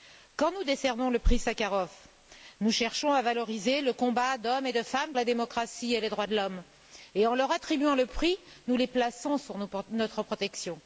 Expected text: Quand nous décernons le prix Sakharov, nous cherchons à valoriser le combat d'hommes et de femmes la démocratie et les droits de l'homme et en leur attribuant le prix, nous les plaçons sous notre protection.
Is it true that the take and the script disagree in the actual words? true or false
false